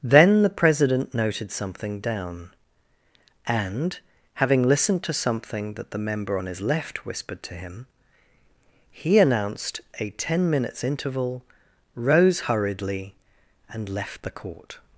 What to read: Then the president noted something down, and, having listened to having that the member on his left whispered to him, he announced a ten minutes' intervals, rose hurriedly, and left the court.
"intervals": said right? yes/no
no